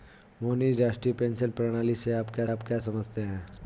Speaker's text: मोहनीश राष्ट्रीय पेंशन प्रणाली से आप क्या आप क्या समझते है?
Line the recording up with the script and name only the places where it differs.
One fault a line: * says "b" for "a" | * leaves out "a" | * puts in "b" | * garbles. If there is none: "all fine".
all fine